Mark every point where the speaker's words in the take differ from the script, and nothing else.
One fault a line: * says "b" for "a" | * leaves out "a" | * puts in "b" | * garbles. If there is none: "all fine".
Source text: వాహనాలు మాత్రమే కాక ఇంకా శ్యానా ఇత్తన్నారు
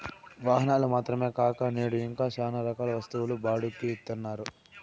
* puts in "నేడు"
* puts in "రకాల వస్తువులు బాడుక్కి"